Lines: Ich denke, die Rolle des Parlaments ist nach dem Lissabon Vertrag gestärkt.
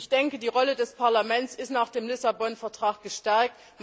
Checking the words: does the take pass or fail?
pass